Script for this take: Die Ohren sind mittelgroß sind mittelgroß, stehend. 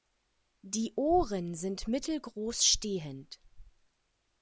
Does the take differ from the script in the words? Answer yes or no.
yes